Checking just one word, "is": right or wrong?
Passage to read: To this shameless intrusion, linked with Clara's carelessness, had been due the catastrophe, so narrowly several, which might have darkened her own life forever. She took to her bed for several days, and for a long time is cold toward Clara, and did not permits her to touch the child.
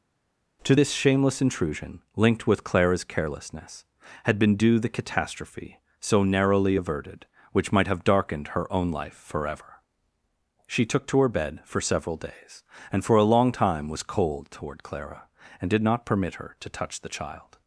wrong